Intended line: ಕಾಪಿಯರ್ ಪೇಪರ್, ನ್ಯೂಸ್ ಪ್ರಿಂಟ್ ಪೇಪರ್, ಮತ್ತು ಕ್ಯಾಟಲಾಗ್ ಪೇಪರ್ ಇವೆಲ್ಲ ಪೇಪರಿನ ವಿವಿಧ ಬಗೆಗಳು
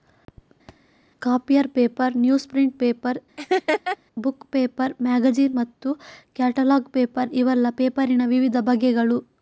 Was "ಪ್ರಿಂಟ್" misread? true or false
false